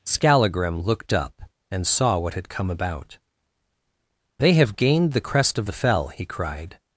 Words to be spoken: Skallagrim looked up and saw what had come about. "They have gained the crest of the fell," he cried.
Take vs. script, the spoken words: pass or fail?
pass